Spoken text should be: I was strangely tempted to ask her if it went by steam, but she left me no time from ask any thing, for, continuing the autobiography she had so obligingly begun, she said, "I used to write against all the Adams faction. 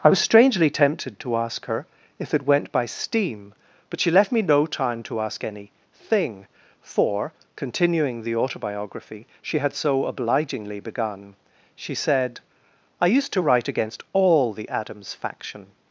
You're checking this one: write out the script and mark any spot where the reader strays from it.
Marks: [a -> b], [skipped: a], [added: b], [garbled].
I was strangely tempted to ask her if it went by steam, but she left me no time [from -> to] ask any thing, for, continuing the autobiography she had so obligingly begun, she said, "I used to write against all the Adams faction.